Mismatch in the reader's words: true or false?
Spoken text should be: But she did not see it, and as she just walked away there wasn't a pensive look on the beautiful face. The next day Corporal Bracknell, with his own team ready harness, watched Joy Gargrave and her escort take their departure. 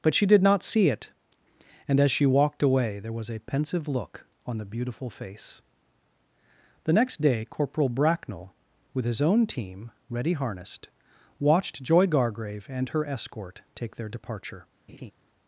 true